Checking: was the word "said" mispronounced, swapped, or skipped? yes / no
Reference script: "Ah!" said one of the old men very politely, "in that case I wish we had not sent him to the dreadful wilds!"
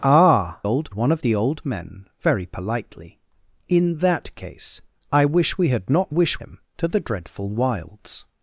yes